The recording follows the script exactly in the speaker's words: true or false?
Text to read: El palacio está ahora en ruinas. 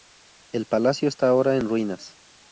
true